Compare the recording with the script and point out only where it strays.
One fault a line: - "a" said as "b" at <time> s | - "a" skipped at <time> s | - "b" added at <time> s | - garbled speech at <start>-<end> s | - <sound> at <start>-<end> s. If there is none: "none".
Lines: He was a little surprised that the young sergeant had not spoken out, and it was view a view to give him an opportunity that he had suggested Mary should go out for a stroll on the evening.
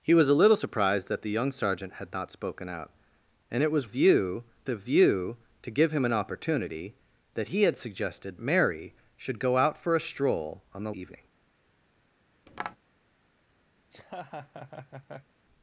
- tap at 12.5-12.8 s
- laugh at 13.8-15.3 s